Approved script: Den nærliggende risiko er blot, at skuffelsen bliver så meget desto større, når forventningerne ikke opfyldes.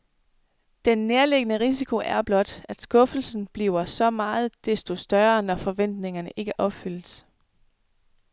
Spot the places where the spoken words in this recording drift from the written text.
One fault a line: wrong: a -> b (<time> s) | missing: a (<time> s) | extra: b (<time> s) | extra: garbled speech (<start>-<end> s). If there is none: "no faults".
no faults